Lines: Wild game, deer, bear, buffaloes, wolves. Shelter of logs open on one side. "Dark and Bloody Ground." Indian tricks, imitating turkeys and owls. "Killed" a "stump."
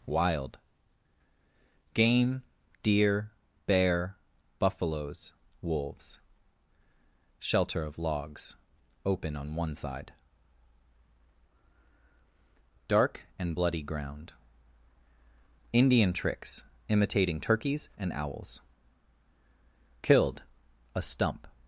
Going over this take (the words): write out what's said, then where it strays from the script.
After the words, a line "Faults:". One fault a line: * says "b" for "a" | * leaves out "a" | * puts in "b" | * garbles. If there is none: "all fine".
Wild game, deer, bear, buffaloes, wolves. Shelter of logs open on one side. "Dark and Bloody Ground." Indian tricks, imitating turkeys and owls. "Killed" a "stump."
Faults:
all fine